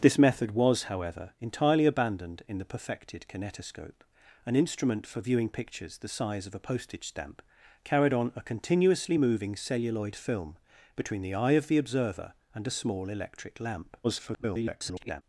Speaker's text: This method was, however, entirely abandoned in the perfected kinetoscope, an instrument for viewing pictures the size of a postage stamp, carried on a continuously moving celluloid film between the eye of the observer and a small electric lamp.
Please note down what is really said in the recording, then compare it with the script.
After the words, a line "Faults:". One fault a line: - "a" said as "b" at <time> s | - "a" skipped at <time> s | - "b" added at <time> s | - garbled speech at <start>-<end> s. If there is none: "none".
This method was, however, entirely abandoned in the perfected kinetoscope, an instrument for viewing pictures the size of a postage stamp, carried on a continuously moving celluloid film between the eye of the observer and a small electric lamp. [garbled]
Faults:
- garbled speech at 14.0-15.2 s